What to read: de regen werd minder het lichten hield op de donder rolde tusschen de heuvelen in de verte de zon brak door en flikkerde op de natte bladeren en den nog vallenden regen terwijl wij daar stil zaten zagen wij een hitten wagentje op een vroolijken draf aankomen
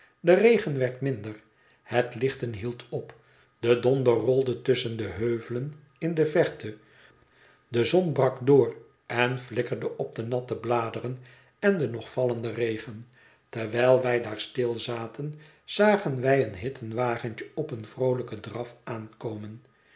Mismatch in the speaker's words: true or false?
false